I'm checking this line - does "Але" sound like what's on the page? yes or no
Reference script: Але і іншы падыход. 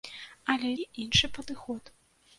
yes